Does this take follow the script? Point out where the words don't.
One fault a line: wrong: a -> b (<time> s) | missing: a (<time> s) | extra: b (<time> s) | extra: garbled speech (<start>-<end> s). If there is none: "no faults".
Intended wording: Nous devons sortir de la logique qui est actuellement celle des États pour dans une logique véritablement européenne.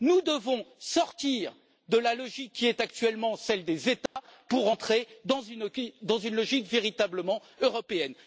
extra: entrer (4.7 s)